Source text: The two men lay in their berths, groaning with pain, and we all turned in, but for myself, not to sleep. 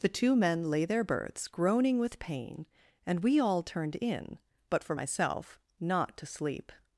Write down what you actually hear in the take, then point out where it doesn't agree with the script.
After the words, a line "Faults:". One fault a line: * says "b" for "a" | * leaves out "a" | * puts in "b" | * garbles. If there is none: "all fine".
The two men lay their berths, groaning with pain, and we all turned in, but for myself, not to sleep.
Faults:
* leaves out "in"